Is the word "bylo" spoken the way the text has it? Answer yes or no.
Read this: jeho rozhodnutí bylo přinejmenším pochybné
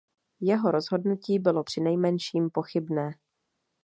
yes